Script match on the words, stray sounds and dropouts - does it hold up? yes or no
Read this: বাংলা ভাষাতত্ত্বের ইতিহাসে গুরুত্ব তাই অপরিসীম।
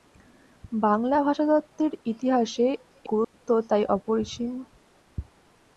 no